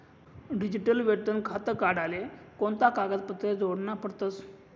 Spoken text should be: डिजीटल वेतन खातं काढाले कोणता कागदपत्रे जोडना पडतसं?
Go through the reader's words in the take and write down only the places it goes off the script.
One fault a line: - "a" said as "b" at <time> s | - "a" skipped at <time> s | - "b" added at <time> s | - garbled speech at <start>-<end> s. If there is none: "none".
none